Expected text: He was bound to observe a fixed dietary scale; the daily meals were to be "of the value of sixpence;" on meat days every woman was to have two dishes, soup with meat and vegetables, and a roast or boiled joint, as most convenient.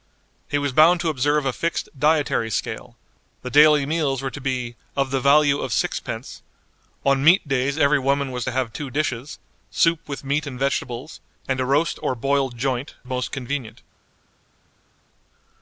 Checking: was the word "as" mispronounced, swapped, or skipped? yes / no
yes